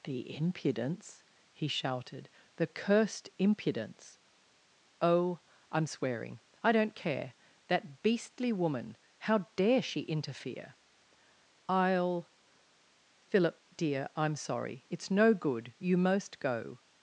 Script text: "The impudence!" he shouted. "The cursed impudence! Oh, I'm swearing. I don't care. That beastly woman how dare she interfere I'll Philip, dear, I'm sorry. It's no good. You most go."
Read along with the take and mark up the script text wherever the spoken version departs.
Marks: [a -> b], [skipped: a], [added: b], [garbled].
"The impudence!" he shouted. "The cursed impudence! Oh, I'm swearing. I don't care. That beastly woman how dare she interfere I'll Philip, dear, I'm sorry. It's no good. You most go."